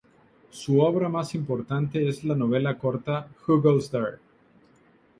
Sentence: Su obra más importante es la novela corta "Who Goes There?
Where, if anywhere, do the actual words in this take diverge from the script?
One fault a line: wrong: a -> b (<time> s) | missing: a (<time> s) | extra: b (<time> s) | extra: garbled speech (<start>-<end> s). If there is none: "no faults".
no faults